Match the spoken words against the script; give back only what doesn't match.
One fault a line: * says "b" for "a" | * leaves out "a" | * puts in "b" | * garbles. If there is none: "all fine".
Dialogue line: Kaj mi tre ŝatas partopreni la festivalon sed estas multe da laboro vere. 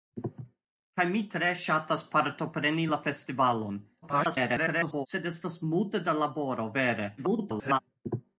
* garbles
* garbles